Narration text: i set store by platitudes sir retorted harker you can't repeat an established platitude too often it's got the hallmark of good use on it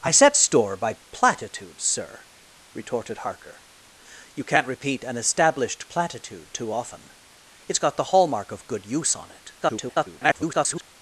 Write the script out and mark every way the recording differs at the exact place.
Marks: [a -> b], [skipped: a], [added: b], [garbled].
i set store by platitudes sir retorted harker you can't repeat an established platitude too often it's got the hallmark of good use on it [garbled]